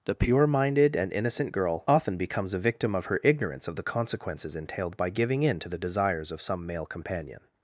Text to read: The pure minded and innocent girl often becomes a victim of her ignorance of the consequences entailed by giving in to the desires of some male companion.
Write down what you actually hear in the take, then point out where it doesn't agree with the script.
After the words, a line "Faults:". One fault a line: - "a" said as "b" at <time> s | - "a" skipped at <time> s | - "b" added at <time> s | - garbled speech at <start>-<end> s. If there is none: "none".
The pure minded and innocent girl often becomes a victim of her ignorance of the consequences entailed by giving in to the desires of some male companion.
Faults:
none